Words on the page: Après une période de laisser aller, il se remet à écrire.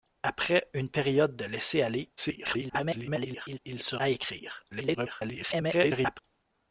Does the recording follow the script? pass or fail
fail